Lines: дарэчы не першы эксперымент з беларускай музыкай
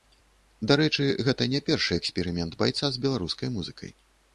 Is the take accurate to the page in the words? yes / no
no